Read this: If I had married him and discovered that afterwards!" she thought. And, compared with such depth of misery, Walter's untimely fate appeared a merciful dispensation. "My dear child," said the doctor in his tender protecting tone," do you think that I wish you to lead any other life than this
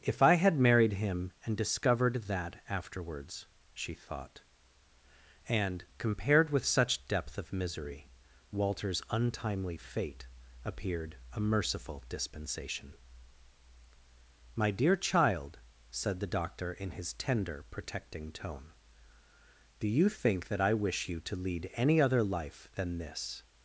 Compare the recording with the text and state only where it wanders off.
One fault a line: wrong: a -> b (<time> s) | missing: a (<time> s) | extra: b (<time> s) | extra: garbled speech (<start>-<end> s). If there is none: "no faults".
no faults